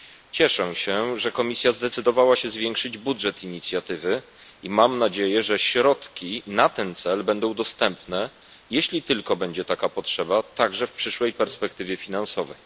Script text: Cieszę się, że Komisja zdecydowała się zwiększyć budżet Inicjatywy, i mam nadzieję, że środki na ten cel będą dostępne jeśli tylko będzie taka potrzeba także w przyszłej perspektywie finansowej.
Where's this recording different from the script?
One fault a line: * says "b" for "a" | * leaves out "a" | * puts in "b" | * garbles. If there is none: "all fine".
all fine